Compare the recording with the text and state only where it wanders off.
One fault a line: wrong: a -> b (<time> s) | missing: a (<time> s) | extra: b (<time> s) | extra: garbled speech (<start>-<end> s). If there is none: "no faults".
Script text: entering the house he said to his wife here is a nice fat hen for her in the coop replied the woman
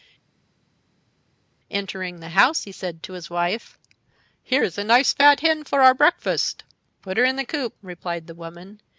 extra: our breakfast put (5.8 s)